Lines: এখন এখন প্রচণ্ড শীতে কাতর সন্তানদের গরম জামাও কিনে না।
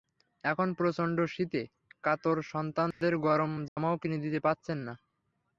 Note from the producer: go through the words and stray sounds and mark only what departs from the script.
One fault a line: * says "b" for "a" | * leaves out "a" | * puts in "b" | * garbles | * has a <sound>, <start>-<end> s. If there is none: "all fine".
* leaves out "এখন"
* has a dropout, 2.9-3.0 s
* has a dropout, 3.7-3.8 s
* puts in "দিতে পারছেন"